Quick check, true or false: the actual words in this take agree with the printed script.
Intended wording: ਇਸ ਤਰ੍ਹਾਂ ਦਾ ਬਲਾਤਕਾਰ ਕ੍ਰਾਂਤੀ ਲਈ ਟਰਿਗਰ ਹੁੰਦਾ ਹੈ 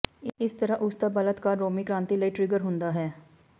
false